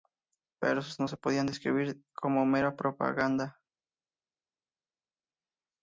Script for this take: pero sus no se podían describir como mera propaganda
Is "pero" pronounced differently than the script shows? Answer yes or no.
no